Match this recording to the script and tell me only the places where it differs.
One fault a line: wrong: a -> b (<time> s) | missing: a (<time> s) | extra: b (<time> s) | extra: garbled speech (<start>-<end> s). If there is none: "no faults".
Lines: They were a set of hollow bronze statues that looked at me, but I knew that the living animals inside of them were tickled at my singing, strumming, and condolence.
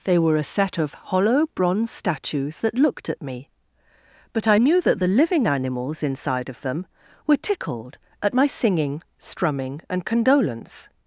no faults